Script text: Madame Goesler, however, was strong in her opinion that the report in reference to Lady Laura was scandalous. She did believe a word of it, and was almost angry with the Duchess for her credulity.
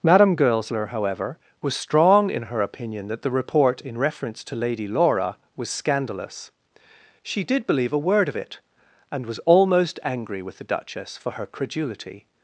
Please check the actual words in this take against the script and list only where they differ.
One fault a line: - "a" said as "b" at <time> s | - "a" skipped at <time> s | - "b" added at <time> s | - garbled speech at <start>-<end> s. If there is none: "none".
none